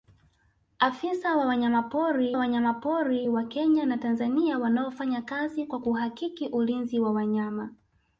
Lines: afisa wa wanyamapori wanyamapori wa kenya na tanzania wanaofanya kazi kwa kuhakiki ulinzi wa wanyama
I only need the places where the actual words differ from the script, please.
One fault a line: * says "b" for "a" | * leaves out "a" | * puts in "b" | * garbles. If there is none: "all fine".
all fine